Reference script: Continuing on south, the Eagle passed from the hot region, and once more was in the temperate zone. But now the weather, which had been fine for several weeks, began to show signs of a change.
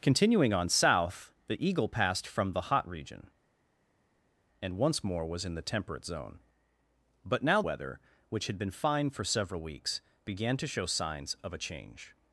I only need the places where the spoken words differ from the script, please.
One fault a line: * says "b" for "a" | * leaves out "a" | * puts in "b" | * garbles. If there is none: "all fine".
* leaves out "the"